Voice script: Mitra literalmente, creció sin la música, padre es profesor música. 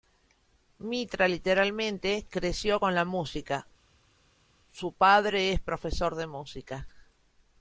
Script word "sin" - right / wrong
wrong